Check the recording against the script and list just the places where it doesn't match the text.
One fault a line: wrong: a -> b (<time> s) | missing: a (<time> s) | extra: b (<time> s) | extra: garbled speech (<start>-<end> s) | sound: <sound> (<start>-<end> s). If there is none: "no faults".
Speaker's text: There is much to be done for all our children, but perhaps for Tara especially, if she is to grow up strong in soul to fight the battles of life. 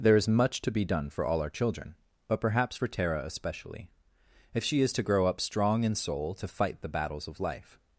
no faults